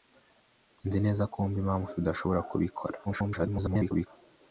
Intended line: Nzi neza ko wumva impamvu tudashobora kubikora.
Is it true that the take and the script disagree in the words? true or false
true